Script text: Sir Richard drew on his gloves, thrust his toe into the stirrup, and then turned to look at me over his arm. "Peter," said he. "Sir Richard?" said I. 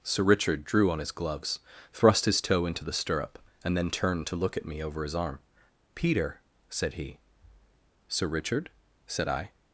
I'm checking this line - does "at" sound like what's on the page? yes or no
yes